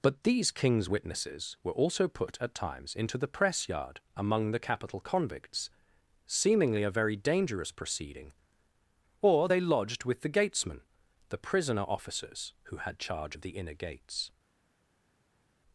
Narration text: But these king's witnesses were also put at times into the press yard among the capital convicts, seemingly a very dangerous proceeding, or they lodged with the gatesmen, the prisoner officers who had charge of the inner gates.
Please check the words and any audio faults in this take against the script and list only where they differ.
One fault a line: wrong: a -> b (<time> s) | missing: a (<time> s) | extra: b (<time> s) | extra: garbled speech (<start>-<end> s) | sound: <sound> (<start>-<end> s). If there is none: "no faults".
no faults